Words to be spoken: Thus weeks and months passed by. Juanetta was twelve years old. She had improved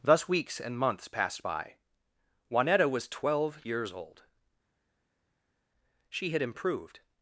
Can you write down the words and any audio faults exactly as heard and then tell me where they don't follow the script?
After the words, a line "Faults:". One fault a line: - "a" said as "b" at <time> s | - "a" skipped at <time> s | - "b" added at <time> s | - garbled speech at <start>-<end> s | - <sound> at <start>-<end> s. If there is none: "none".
Thus weeks and months passed by. Juanetta was twelve years old. She had improved
Faults:
none